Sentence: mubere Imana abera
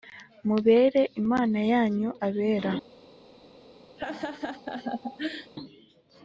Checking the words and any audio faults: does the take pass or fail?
fail